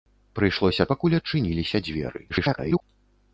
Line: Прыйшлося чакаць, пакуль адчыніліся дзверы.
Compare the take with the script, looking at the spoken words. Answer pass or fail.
fail